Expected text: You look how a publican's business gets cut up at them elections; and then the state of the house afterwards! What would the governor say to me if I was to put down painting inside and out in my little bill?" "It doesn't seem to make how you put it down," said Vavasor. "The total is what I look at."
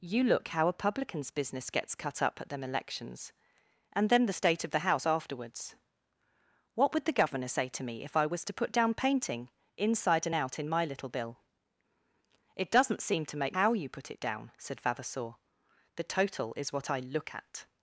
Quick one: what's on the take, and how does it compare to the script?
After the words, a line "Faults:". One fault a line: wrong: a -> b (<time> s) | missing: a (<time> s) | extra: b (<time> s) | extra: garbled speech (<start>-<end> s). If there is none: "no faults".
You look how a publican's business gets cut up at them elections; and then the state of the house afterwards! What would the governor say to me if I was to put down painting inside and out in my little bill?" "It doesn't seem to make how you put it down," said Vavasor. "The total is what I look at."
Faults:
no faults